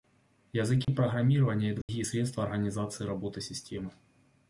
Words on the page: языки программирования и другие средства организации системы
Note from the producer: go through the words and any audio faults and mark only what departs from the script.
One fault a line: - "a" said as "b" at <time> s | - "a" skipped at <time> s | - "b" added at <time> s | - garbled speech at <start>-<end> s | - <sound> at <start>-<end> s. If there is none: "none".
- dropout at 0.8-0.9 s
- dropout at 1.8-1.9 s
- "работы" added at 3.0 s